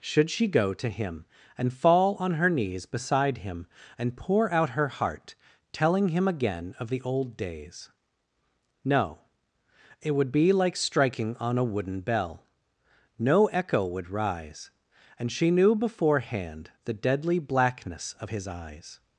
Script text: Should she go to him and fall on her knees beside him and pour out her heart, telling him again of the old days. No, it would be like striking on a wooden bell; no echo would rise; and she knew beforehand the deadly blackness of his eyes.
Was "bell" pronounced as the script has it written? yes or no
yes